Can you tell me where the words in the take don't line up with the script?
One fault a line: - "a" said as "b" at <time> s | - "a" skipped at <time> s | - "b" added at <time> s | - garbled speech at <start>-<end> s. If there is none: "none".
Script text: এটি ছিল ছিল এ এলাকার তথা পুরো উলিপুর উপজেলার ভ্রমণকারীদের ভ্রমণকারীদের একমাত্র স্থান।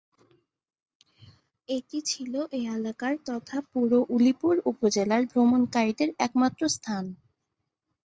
- "ছিল" skipped at 2.3 s
- "ভ্রমণকারীদের" skipped at 6.1 s